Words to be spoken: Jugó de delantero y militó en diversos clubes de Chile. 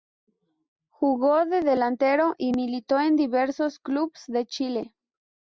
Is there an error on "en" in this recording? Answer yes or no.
no